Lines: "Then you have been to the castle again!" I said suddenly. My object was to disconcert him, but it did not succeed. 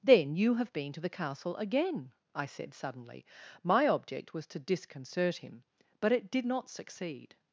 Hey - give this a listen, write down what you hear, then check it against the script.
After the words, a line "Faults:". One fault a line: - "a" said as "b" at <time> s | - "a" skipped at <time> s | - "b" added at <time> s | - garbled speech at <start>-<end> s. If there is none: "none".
"Then you have been to the castle again!" I said suddenly. My object was to disconcert him, but it did not succeed.
Faults:
none